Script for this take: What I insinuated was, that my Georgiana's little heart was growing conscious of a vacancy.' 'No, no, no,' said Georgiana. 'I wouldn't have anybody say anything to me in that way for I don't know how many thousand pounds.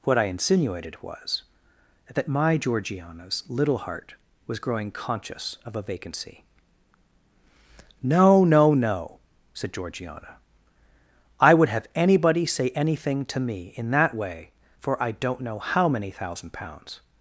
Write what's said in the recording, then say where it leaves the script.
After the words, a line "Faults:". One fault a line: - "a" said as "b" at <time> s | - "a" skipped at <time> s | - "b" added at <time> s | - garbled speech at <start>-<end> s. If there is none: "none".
What I insinuated was, that my Georgiana's little heart was growing conscious of a vacancy.' 'No, no, no,' said Georgiana. 'I would have anybody say anything to me in that way for I don't know how many thousand pounds.
Faults:
- "wouldn't" said as "would" at 11.5 s